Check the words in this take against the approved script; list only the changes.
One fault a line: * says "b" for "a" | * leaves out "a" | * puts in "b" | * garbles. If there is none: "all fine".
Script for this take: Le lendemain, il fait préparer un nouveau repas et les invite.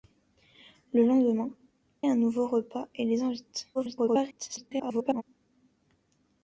* leaves out "il fait préparer"
* garbles